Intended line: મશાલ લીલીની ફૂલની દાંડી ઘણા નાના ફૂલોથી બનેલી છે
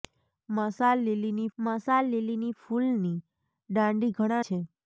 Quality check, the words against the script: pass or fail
fail